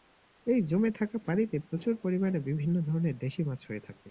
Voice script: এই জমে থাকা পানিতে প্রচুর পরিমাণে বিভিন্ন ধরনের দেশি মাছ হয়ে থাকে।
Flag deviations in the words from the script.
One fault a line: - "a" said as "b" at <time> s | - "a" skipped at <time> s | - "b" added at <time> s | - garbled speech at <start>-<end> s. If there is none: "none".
none